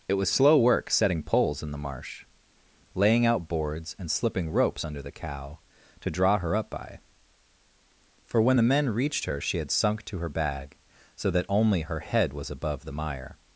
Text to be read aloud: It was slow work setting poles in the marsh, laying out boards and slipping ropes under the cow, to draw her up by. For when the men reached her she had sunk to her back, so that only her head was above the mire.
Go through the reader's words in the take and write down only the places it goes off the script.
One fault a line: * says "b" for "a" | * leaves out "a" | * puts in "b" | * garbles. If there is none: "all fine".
* says "bag" for "back"